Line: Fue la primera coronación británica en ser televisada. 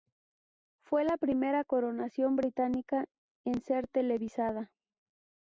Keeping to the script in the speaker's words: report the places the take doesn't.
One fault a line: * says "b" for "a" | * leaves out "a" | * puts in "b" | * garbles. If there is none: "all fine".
all fine